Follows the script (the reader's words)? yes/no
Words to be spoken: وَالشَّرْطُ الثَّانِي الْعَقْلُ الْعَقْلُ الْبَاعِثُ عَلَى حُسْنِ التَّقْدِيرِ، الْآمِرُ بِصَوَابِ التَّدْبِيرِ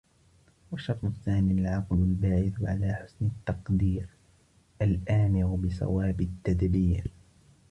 no